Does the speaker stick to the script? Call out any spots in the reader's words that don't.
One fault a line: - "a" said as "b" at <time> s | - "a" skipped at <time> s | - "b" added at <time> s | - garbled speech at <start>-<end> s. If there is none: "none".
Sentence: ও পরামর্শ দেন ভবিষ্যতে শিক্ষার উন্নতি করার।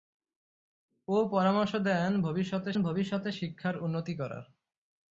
- "ভবিষ্যতে" added at 2.8 s